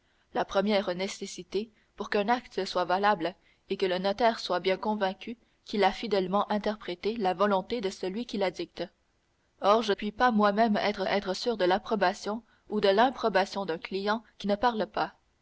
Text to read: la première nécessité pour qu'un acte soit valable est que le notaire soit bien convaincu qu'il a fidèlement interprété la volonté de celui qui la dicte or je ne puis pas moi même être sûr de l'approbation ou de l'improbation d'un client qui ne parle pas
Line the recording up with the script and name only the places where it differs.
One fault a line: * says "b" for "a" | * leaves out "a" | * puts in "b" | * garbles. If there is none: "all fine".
* leaves out "ne"
* puts in "être"